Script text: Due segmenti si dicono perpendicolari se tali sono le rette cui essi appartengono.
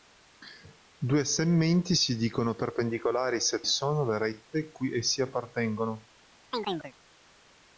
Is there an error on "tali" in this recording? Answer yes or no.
yes